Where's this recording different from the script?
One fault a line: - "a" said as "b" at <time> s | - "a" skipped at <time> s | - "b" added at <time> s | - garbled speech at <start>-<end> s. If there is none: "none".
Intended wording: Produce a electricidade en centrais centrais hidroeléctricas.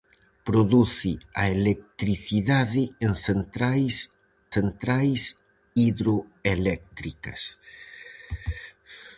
none